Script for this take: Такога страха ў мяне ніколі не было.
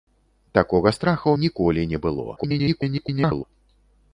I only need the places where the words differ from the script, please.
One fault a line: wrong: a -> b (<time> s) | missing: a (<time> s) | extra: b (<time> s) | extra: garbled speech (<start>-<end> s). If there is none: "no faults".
missing: мяне (1.4 s)
extra: garbled speech (2.4-3.4 s)